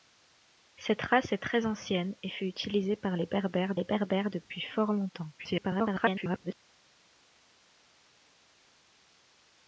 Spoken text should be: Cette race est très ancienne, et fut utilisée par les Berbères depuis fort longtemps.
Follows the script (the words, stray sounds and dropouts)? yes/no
no